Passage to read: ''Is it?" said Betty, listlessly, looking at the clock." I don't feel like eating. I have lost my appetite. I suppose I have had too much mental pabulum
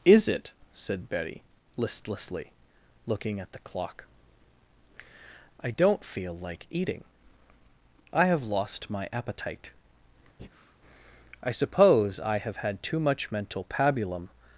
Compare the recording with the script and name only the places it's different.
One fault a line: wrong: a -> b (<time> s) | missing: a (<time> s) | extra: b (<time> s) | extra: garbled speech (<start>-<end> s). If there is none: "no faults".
no faults